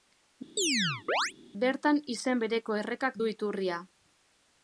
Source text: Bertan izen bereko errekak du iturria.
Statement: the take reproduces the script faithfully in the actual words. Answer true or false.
true